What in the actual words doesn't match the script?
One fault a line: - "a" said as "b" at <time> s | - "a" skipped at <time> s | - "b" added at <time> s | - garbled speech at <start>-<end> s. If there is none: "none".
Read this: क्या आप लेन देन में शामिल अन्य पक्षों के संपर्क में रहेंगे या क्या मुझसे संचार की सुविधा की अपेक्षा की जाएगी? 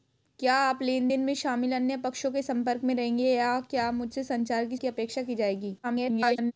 - "सुविधा" skipped at 4.8 s
- garbled speech at 5.8-6.5 s